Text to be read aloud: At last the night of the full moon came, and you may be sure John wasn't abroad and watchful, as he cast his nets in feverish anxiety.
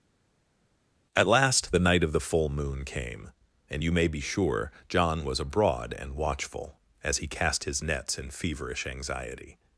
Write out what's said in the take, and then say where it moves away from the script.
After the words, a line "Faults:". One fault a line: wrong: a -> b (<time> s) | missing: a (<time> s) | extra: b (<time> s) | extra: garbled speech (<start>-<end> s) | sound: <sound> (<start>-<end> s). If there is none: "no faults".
At last the night of the full moon came, and you may be sure John was abroad and watchful, as he cast his nets in feverish anxiety.
Faults:
wrong: wasn't -> was (5.2 s)